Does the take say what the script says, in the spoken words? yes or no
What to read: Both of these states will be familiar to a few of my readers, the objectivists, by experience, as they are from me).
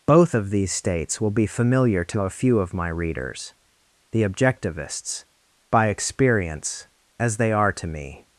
no